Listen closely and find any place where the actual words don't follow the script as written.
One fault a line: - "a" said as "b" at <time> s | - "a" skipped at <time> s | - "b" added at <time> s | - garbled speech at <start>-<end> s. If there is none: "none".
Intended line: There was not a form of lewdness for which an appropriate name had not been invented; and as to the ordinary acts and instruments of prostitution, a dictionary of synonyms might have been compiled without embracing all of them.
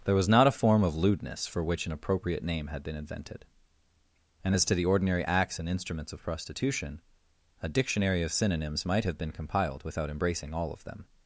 - "not" skipped at 2.8 s